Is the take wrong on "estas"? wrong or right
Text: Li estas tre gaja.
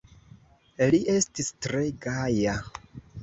wrong